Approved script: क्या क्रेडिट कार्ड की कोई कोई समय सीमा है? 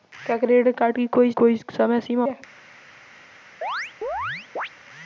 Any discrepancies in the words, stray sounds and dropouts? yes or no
yes